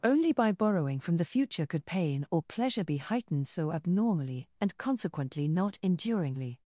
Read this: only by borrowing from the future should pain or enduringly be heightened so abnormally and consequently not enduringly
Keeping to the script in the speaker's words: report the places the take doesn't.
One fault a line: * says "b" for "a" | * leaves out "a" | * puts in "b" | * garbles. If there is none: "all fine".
* says "could" for "should"
* says "pleasure" for "enduringly"